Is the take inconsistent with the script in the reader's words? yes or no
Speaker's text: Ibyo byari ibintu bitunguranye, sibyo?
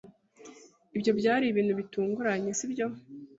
no